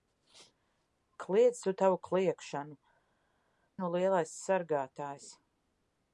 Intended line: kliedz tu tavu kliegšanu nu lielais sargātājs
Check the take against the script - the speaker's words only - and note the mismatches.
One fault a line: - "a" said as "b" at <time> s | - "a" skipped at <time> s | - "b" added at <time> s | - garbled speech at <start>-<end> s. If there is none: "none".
none